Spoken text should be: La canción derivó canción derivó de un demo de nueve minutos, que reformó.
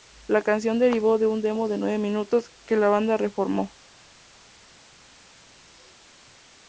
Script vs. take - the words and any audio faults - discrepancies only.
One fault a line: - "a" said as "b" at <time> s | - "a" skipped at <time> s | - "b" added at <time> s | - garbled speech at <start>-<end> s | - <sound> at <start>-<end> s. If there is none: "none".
- "canción derivó" skipped at 1.2 s
- "la banda" added at 2.8 s